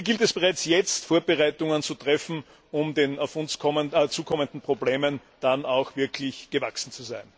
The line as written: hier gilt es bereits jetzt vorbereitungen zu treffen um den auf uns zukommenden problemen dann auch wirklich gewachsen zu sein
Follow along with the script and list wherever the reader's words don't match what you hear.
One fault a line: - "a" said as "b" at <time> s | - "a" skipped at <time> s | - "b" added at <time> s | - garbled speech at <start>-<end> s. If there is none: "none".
none